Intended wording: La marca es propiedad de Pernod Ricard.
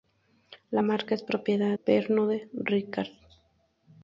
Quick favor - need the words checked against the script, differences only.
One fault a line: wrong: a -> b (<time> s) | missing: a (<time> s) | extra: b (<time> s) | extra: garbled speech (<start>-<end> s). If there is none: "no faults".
missing: de (1.8 s)